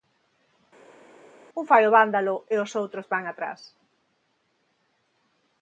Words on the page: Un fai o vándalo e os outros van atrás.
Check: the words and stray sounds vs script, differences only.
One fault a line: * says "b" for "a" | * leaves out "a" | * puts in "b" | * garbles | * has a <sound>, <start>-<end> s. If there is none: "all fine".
all fine